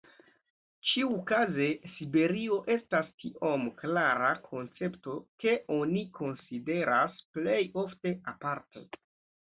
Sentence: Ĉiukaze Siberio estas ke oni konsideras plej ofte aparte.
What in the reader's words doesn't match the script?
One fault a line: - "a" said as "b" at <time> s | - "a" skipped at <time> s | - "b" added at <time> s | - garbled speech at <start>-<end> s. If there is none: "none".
- "tiom klara koncepto" added at 3.2 s